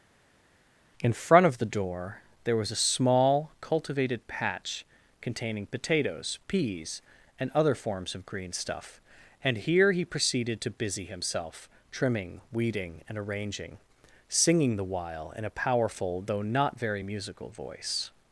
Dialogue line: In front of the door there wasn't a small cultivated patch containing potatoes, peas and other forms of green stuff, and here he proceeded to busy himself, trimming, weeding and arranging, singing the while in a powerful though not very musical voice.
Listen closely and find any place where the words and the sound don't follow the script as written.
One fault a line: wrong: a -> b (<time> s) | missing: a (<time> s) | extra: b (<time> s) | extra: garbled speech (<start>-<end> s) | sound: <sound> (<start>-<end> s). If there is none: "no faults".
wrong: wasn't -> was (2.6 s)